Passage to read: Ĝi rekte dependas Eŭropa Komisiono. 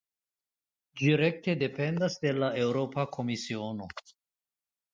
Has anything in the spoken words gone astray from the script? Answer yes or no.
yes